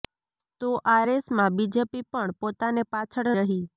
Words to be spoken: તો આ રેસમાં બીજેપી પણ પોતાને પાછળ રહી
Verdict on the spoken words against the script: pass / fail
pass